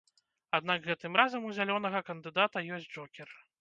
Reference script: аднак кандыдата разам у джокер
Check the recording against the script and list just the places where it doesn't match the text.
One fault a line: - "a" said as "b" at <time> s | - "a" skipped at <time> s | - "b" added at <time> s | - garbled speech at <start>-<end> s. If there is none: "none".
- "кандыдата" said as "гэтым" at 0.9 s
- "зялёнага кандыдата ёсць" added at 1.6 s